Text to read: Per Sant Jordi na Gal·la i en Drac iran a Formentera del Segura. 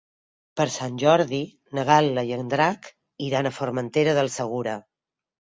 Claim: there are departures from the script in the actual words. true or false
false